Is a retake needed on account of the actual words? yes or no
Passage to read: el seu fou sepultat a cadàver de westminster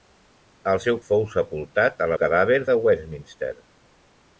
no